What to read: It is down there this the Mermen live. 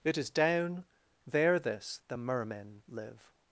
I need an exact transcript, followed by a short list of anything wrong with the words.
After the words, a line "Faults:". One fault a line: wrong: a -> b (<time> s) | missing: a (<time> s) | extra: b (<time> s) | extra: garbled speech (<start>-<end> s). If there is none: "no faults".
It is down there this the Mermen live.
Faults:
no faults